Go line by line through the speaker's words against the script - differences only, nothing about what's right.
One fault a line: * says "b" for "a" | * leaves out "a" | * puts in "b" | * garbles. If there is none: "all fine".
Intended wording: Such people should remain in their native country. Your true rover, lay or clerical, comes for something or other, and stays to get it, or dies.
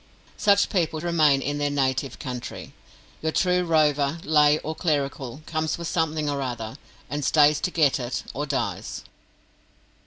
* leaves out "should"